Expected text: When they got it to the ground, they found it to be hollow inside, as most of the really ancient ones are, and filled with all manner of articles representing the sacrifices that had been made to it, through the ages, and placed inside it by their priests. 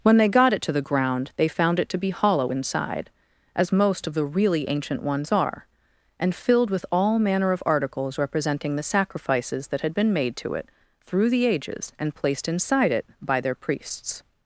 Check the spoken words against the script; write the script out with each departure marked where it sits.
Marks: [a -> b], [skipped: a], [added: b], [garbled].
When they got it to the ground, they found it to be hollow inside, as most of the really ancient ones are, and filled with all manner of articles representing the sacrifices that had been made to it, through the ages, and placed inside it by their priests.